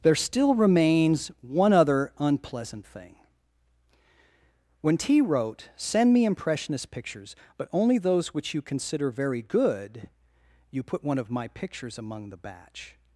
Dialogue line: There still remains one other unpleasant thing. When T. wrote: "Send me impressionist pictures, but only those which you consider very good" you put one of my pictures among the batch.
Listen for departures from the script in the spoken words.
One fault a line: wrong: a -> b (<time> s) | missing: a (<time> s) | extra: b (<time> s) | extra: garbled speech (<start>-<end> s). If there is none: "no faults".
no faults